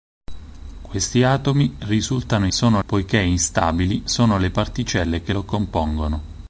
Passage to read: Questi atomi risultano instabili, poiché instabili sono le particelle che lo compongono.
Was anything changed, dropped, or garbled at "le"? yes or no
no